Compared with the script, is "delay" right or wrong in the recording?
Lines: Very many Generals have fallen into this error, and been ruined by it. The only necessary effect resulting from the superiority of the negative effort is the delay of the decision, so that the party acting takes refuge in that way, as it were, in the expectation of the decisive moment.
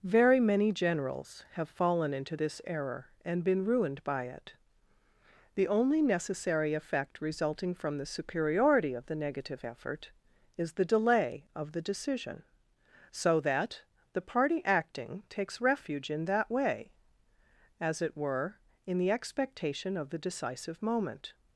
right